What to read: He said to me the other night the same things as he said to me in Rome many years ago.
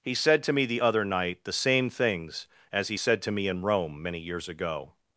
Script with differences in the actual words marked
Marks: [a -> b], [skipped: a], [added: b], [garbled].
He said to me the other night the same things as he said to me in Rome many years ago.